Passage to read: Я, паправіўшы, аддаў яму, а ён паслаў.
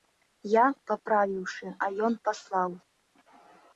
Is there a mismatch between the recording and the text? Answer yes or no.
yes